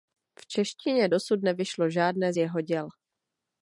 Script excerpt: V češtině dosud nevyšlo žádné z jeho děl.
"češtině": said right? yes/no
yes